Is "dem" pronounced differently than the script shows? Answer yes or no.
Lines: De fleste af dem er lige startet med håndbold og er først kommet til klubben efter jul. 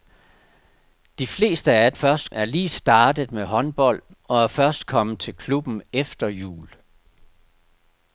yes